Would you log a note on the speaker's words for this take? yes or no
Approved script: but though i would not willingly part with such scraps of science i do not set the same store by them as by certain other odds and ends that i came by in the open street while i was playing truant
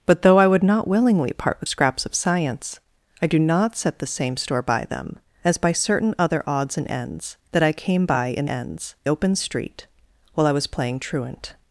yes